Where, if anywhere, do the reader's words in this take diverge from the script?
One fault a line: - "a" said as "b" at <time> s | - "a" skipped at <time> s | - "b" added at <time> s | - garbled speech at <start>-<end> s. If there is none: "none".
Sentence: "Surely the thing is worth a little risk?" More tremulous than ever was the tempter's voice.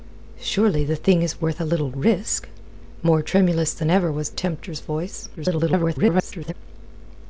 - "the" skipped at 4.3 s
- garbled speech at 5.4-6.5 s